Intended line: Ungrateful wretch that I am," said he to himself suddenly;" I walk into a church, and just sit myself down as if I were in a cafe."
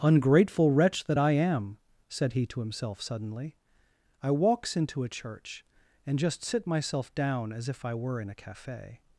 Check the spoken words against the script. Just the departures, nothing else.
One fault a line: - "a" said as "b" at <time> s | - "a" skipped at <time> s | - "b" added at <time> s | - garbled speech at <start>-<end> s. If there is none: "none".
- "walk" said as "walks" at 4.3 s